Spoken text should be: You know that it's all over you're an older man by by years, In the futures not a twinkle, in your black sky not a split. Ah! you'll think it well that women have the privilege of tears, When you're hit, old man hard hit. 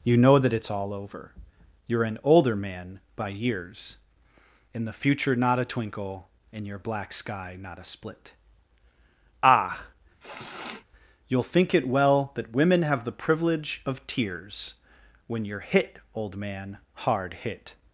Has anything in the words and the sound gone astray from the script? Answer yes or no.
yes